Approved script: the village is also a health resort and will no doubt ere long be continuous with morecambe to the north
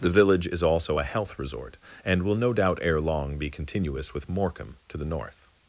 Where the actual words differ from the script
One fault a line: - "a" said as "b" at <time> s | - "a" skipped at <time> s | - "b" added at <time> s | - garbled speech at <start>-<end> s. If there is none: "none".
none